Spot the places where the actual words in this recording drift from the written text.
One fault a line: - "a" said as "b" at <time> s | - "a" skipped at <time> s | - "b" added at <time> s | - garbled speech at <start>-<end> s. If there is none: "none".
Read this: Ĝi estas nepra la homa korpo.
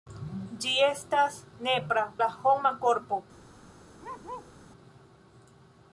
none